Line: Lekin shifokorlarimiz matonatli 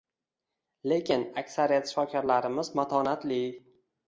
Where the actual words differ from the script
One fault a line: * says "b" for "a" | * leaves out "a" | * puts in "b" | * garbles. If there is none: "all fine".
* puts in "aksariyat"